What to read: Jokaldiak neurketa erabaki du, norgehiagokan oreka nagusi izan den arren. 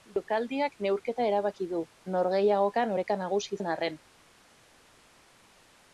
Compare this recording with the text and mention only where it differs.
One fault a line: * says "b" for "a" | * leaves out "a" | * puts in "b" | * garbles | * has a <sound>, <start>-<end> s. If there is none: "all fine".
* leaves out "izan"